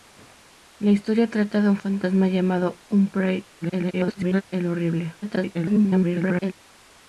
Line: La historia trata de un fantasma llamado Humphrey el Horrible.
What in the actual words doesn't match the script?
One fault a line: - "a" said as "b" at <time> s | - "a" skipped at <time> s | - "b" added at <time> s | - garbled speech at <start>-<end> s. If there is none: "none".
- garbled speech at 3.6-4.4 s
- garbled speech at 5.2-6.5 s